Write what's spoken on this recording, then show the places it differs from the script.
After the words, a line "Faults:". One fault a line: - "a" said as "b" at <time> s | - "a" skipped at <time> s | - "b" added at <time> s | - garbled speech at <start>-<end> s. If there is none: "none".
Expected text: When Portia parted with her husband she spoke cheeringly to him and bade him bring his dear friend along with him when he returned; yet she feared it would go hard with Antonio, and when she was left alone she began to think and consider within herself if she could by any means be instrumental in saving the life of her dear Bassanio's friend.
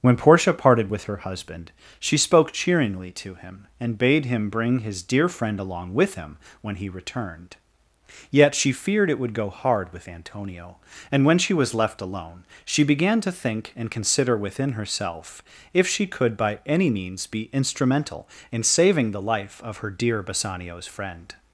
When Portia parted with her husband she spoke cheeringly to him and bade him bring his dear friend along with him when he returned; yet she feared it would go hard with Antonio, and when she was left alone she began to think and consider within herself if she could by any means be instrumental in saving the life of her dear Bassanio's friend.
Faults:
none